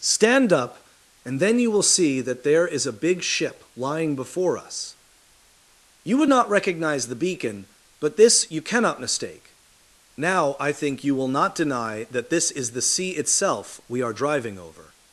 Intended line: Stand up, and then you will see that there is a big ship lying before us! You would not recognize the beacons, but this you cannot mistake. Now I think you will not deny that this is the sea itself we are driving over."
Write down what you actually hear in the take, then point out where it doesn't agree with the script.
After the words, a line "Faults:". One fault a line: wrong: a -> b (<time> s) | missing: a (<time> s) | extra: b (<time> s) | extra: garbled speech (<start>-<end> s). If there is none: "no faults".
Stand up, and then you will see that there is a big ship lying before us! You would not recognize the beacon, but this you cannot mistake. Now I think you will not deny that this is the sea itself we are driving over."
Faults:
wrong: beacons -> beacon (7.2 s)